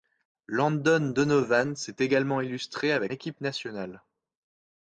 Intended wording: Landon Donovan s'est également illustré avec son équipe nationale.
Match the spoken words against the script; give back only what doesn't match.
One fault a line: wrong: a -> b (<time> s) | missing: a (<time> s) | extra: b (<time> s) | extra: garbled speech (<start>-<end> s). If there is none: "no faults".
missing: son (3.1 s)